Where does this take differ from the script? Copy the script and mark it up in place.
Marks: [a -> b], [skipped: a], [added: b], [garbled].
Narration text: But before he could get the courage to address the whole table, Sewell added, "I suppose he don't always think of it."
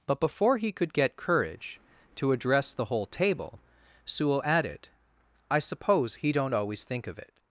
But before he could get [skipped: the] courage to address the whole table, Sewell added, "I suppose he don't always think of it."